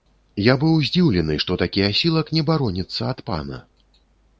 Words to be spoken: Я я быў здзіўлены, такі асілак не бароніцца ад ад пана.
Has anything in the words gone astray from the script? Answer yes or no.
yes